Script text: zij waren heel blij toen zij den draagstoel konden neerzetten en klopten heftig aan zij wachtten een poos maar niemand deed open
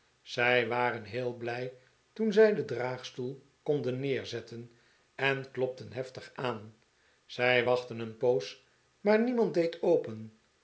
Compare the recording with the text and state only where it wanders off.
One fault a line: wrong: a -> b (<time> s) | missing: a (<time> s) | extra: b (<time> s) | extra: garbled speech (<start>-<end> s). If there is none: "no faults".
no faults